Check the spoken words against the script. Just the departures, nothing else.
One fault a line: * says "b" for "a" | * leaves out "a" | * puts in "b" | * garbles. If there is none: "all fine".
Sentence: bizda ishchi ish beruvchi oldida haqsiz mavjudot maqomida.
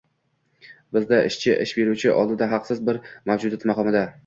* puts in "bir"